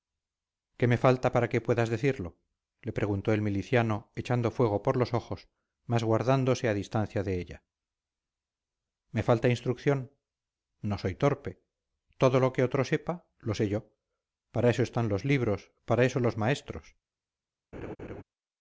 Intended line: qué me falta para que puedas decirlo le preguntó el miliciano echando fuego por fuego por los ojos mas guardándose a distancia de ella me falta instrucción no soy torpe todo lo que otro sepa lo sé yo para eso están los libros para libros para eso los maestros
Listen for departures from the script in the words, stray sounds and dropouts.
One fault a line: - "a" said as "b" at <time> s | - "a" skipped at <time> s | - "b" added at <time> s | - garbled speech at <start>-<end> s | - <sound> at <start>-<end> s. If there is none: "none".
- "fuego por" skipped at 5.0 s
- "libros para" skipped at 16.0 s
- laugh at 17.7-18.2 s